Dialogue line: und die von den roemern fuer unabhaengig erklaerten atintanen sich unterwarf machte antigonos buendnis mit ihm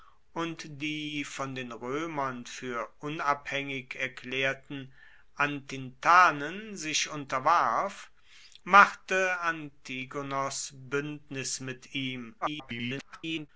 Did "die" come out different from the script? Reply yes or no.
no